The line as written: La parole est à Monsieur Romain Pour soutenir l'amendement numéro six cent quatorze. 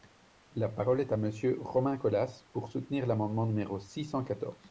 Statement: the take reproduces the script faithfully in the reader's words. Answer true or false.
false